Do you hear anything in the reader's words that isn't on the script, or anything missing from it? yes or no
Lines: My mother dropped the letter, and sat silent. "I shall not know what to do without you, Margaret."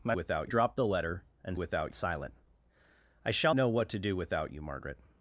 yes